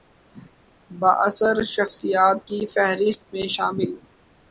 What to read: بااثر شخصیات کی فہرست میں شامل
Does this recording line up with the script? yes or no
yes